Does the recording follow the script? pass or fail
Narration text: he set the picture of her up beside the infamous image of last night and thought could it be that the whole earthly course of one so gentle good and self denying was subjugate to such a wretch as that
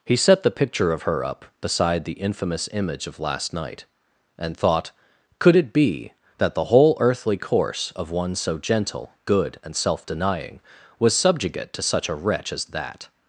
pass